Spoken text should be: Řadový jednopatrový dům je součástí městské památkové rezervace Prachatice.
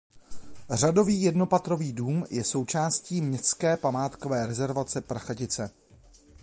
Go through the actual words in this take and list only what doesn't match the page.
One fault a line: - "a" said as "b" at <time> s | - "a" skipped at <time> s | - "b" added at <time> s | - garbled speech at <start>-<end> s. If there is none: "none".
none